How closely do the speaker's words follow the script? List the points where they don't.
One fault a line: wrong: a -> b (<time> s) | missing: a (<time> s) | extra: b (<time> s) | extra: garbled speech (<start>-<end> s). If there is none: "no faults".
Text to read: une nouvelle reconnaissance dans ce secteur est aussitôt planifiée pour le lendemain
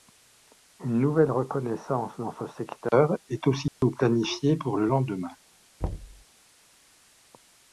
no faults